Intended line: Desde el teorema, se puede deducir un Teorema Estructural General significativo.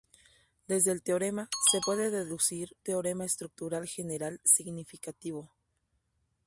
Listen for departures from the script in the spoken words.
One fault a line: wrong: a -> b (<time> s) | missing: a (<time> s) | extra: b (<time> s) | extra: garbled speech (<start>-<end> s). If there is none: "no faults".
missing: un (2.8 s)